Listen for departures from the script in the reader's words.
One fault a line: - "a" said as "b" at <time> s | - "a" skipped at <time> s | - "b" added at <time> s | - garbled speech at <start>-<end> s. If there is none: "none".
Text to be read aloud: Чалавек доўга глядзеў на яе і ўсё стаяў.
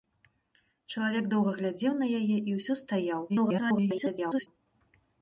- garbled speech at 3.3-4.5 s